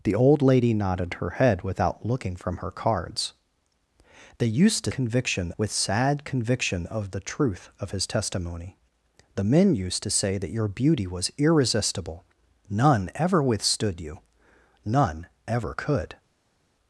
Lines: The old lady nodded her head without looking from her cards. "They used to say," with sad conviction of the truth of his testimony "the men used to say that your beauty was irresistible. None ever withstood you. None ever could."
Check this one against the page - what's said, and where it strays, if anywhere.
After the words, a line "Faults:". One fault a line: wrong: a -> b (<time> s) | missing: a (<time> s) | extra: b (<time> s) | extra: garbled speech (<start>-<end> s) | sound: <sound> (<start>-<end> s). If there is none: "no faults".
The old lady nodded her head without looking from her cards. "They used to conviction," with sad conviction of the truth of his testimony "the men used to say that your beauty was irresistible. None ever withstood you. None ever could."
Faults:
wrong: say -> conviction (4.9 s)